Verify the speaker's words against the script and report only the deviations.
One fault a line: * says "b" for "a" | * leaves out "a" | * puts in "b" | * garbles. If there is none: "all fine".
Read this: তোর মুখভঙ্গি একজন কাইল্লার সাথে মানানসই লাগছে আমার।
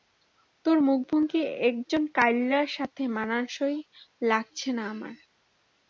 * puts in "না"